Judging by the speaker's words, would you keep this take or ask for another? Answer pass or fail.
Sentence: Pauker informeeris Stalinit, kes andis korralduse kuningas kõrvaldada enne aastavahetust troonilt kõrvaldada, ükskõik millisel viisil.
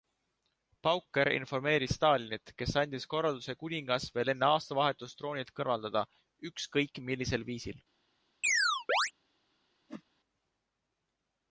fail